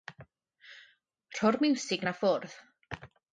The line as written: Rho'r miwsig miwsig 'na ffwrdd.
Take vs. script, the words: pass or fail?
fail